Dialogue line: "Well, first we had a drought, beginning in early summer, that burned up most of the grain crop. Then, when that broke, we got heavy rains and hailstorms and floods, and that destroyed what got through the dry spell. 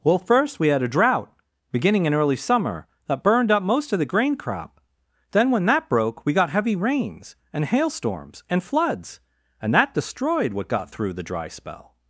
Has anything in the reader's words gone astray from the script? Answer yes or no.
no